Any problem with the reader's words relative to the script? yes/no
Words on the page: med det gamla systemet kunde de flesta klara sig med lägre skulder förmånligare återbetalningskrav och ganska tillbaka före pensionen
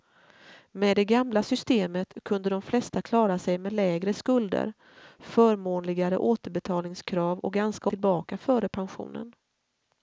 no